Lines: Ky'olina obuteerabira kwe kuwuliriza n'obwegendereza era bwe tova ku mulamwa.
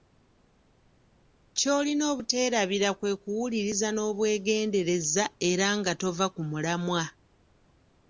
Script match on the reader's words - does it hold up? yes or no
no